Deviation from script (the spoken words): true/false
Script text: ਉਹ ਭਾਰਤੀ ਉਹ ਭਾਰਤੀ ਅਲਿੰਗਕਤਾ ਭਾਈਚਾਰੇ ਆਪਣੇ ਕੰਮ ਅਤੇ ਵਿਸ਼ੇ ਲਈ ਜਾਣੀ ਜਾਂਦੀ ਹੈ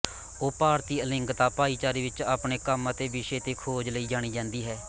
true